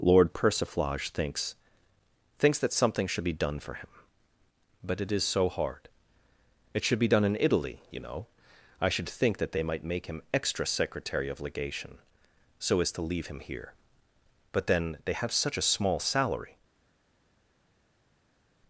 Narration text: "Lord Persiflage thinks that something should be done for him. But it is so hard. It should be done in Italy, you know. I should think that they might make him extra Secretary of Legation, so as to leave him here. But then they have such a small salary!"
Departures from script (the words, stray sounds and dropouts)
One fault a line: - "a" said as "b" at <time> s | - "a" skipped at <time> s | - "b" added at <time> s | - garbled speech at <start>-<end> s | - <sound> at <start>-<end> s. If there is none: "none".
- "thinks" added at 2.4 s